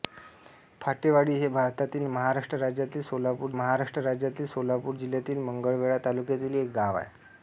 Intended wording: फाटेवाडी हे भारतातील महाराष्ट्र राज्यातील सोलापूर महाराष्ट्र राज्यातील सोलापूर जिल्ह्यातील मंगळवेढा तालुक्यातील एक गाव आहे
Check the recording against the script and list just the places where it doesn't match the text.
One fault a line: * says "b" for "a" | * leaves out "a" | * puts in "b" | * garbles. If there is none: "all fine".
all fine